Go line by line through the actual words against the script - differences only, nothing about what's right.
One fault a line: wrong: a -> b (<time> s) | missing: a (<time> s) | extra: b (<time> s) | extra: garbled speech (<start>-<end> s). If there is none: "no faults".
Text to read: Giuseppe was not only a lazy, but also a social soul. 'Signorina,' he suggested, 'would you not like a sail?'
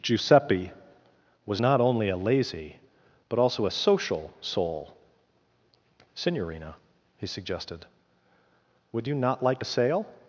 no faults